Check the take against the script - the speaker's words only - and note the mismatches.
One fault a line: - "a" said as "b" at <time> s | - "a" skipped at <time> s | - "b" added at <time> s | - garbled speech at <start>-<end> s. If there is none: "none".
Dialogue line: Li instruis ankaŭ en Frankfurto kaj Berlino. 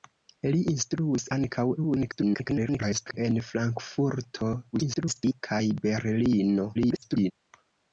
- garbled speech at 1.8-3.2 s
- garbled speech at 4.7-5.4 s
- garbled speech at 6.7-7.3 s